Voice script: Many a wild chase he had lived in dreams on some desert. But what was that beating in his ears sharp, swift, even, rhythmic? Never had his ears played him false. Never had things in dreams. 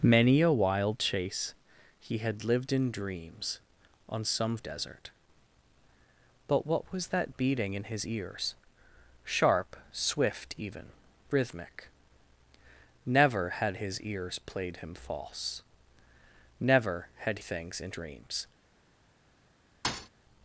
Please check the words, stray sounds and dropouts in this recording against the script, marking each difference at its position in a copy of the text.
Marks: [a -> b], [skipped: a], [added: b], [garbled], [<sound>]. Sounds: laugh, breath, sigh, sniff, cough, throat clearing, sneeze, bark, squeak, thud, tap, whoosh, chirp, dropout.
Many a wild chase he had lived in dreams on some desert. But what was that beating in his ears sharp, swift, even, rhythmic? Never had his ears played him false. Never had things in dreams. [thud]